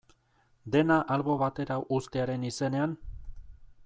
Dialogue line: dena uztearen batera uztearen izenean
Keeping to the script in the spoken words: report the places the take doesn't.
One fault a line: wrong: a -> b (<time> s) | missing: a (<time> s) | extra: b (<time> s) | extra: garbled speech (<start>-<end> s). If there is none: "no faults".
wrong: uztearen -> albo (1.1 s)